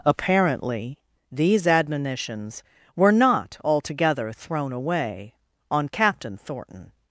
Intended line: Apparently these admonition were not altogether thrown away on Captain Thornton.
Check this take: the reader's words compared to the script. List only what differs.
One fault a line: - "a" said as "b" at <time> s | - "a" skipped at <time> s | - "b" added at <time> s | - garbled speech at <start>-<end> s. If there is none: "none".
- "admonition" said as "admonitions" at 1.7 s